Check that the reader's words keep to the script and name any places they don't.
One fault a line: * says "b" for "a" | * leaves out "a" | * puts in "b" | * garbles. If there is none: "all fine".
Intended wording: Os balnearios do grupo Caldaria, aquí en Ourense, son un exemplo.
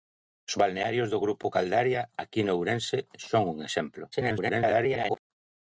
* garbles